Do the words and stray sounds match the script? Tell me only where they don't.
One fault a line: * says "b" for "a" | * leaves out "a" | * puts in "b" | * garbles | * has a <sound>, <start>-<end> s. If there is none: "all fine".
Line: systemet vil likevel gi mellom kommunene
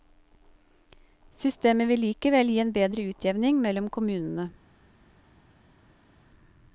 * puts in "en bedre utjevning"